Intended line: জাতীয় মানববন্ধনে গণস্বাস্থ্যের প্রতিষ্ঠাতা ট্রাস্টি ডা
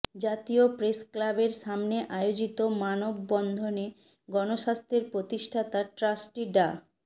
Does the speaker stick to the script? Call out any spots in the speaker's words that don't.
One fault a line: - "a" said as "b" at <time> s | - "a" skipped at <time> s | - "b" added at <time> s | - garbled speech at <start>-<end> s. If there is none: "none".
- "প্রেসক্লাবের সামনে আয়োজিত" added at 0.8 s